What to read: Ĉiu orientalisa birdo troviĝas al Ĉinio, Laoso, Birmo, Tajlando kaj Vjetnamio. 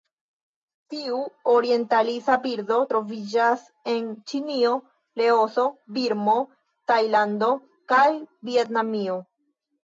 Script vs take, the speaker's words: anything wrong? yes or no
yes